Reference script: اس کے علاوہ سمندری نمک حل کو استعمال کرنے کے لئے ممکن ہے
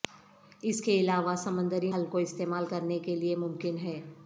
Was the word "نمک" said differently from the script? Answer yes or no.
yes